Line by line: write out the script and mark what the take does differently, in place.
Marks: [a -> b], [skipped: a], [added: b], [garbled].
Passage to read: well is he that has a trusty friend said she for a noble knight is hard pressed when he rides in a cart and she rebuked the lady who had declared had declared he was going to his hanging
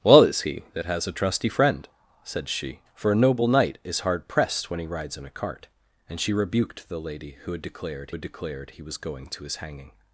well is he that has a trusty friend said she for a noble knight is hard pressed when he rides in a cart and she rebuked the lady who had declared had declared he was going to his hanging